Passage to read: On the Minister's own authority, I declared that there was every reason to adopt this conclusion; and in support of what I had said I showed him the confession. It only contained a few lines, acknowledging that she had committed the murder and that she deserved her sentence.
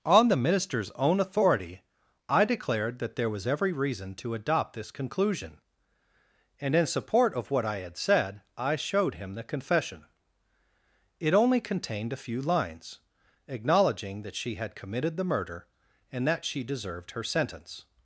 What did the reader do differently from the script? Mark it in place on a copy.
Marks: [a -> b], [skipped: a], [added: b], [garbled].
On the Minister's own authority, I declared that there was every reason to adopt this conclusion; and in support of what I had said I showed him the confession. It only contained a few lines, acknowledging that she had committed the murder and that she deserved her sentence.